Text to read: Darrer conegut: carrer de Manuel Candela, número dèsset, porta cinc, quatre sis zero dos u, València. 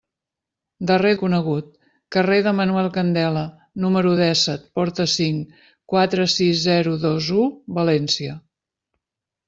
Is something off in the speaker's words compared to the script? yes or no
no